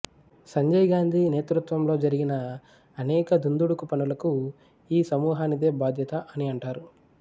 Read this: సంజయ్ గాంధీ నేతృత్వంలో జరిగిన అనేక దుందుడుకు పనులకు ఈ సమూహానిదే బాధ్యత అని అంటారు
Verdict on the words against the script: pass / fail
pass